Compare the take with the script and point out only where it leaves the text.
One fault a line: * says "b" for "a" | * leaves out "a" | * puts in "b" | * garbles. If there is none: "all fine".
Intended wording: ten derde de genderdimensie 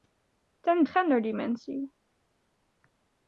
* leaves out "derde de"